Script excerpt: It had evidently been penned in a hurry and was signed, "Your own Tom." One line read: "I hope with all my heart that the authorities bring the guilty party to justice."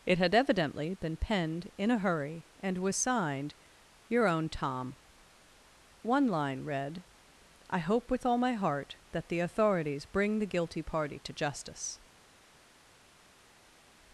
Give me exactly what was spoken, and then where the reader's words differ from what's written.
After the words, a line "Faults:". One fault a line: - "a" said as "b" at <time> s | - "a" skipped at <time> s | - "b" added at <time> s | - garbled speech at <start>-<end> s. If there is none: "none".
It had evidently been penned in a hurry and was signed, "Your own Tom." One line read: "I hope with all my heart that the authorities bring the guilty party to justice."
Faults:
none